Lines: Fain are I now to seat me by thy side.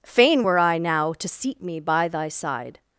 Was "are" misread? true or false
true